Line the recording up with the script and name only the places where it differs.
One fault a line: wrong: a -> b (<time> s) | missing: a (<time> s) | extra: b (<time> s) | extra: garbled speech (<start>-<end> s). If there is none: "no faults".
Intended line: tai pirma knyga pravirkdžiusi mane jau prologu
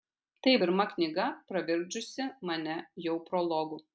no faults